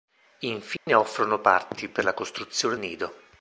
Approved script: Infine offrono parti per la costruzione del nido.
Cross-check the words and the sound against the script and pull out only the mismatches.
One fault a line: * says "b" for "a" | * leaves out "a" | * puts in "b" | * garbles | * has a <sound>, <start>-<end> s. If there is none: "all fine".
* has a dropout, 0.8-0.9 s
* leaves out "del"